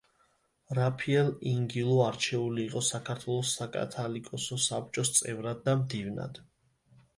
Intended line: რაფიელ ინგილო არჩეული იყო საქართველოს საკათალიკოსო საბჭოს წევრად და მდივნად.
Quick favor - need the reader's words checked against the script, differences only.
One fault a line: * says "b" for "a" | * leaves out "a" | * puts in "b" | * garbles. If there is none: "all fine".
all fine